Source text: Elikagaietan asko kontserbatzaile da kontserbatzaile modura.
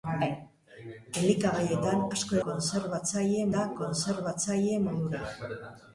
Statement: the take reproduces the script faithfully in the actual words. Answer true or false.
true